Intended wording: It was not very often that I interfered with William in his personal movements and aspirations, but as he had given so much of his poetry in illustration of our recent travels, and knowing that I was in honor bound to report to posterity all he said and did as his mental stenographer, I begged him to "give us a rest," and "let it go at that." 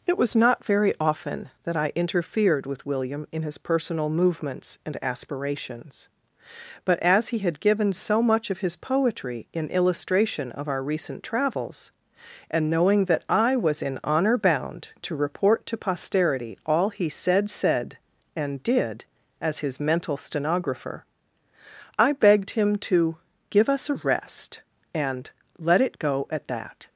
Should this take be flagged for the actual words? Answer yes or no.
yes